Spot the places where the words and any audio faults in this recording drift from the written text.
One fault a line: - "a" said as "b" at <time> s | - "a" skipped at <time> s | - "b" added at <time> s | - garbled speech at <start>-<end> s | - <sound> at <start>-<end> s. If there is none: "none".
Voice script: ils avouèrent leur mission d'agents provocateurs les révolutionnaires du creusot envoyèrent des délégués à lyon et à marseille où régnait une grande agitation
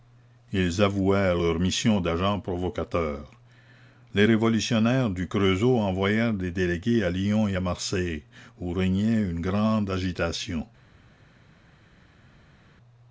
none